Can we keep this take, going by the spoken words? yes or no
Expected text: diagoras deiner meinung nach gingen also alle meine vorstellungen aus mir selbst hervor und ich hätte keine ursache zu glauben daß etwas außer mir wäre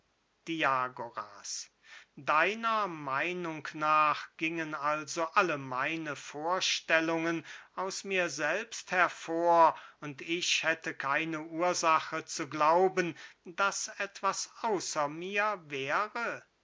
yes